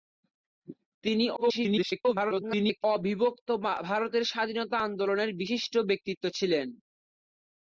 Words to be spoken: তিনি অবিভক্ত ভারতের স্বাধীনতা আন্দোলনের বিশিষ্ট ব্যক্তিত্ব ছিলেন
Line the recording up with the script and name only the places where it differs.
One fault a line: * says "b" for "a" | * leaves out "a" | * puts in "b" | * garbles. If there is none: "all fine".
* garbles